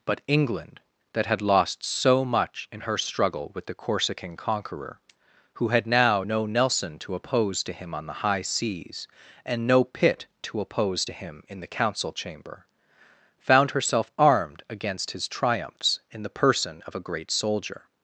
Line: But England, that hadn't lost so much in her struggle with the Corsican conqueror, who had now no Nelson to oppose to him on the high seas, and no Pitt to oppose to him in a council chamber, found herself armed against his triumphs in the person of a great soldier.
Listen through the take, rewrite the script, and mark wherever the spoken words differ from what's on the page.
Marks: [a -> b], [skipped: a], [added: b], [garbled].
But England, that [hadn't -> had] lost so much in her struggle with the Corsican conqueror, who had now no Nelson to oppose to him on the high seas, and no Pitt to oppose to him in [a -> the] council chamber, found herself armed against his triumphs in the person of a great soldier.